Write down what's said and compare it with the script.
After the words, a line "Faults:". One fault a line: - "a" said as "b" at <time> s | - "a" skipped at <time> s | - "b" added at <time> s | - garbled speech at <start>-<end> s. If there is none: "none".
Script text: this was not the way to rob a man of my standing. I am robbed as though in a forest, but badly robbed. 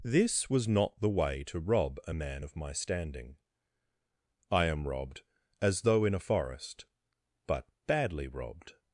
this was not the way to rob a man of my standing. I am robbed as though in a forest, but badly robbed.
Faults:
none